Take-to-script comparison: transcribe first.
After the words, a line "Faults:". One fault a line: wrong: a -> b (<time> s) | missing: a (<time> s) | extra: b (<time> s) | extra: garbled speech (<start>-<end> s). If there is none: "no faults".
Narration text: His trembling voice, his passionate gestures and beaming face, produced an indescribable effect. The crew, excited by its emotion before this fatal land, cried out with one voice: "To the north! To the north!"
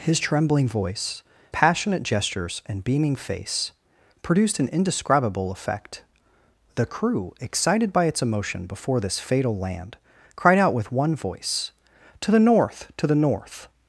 His trembling voice, passionate gestures and beaming face, produced an indescribable effect. The crew, excited by its emotion before this fatal land, cried out with one voice: "To the north! To the north!"
Faults:
missing: his (1.2 s)